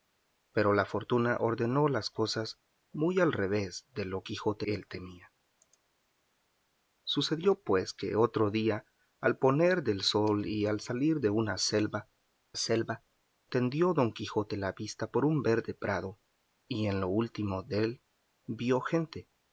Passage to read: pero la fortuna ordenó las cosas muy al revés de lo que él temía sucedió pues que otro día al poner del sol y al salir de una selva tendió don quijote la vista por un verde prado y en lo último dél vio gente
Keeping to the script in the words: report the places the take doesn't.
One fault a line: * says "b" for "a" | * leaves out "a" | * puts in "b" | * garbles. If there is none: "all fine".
* says "quijote" for "que"
* puts in "selva"